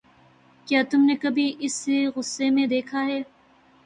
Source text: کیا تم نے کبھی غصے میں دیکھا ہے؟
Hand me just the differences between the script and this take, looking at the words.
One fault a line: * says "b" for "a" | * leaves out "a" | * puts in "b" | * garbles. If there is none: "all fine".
* puts in "اسے"